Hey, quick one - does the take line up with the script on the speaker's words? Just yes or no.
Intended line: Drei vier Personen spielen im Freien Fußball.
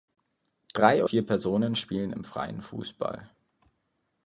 yes